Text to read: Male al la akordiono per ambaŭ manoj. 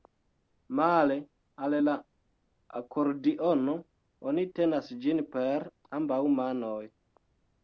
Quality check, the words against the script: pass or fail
fail